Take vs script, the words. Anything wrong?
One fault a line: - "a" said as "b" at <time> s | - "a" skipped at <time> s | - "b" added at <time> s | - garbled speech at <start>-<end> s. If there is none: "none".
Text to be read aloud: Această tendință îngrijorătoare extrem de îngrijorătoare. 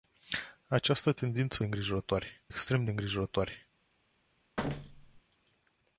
none